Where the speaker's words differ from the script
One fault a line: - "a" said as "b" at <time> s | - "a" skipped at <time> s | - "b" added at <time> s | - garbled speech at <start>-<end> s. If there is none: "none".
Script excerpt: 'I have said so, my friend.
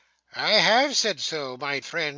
none